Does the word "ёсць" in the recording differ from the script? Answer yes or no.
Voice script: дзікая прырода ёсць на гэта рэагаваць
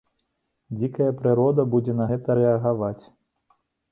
yes